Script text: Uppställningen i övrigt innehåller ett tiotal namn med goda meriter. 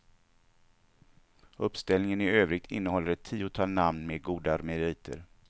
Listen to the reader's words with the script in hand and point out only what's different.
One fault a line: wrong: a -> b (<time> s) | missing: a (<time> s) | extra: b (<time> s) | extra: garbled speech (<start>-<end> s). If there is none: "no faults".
no faults